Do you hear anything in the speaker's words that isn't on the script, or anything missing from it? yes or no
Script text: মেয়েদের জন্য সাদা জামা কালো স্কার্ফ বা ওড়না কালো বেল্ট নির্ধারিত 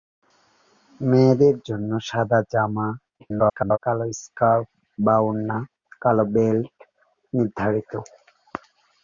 yes